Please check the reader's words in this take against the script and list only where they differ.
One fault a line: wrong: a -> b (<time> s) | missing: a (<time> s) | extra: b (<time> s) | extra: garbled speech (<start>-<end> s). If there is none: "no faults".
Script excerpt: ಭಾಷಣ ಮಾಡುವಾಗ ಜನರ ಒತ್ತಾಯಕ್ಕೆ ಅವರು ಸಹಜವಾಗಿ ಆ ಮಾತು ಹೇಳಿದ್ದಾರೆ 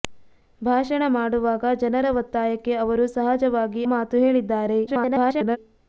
missing: ಆ (3.8 s)
extra: garbled speech (4.9-5.6 s)